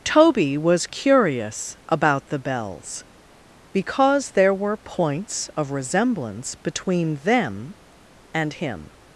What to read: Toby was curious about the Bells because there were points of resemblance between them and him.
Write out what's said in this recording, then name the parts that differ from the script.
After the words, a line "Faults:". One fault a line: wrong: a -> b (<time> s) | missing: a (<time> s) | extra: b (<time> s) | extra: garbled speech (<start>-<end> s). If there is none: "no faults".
Toby was curious about the Bells because there were points of resemblance between them and him.
Faults:
no faults